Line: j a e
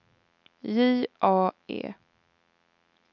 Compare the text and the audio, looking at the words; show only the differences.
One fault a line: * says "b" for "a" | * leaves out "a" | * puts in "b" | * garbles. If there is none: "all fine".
all fine